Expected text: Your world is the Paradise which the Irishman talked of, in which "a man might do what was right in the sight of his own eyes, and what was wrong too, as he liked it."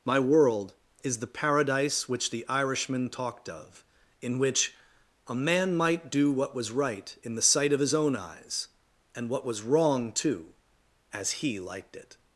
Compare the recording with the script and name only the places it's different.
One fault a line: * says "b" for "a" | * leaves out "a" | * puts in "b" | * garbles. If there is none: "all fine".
* says "My" for "Your"